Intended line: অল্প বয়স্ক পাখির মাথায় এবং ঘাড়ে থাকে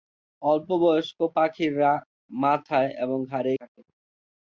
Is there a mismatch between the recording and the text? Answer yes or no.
no